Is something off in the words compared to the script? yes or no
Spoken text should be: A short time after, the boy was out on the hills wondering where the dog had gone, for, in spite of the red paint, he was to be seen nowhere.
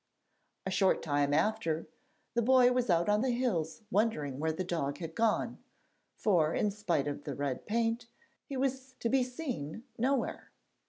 no